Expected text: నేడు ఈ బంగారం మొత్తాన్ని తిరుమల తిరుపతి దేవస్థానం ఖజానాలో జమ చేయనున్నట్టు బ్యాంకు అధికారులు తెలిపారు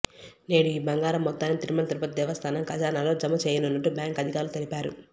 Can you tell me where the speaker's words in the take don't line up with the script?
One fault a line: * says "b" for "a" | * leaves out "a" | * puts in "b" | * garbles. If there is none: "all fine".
all fine